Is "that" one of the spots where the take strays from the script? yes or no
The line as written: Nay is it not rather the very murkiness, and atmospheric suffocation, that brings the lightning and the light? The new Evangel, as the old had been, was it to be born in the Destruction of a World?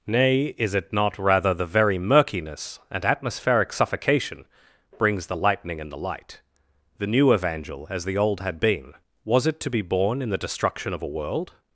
yes